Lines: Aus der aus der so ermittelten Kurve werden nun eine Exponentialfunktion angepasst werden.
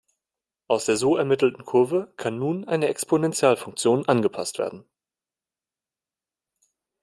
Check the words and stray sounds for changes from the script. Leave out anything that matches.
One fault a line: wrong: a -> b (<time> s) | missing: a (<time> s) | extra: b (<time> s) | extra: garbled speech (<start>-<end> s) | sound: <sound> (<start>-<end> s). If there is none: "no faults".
missing: aus der (1.0 s)
wrong: werden -> kann (2.2 s)